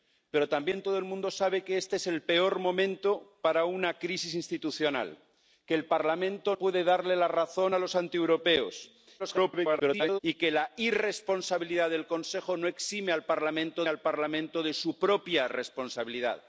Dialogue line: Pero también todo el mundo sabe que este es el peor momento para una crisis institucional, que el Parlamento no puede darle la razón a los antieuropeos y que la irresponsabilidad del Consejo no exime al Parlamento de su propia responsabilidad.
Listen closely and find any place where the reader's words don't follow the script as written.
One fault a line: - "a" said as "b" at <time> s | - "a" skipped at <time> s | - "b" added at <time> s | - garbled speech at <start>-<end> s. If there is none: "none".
- "no" skipped at 6.5 s
- garbled speech at 9.2-10.2 s
- "al Parlamento" added at 13.9 s